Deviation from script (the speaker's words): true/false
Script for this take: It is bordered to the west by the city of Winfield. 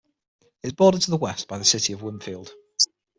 false